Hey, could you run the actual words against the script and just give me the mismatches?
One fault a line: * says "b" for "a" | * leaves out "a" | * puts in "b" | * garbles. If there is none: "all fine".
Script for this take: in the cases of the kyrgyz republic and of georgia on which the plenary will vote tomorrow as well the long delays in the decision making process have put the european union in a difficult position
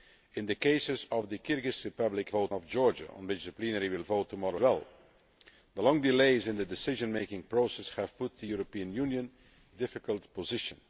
* says "vote" for "and"
* leaves out "as"
* leaves out "in a"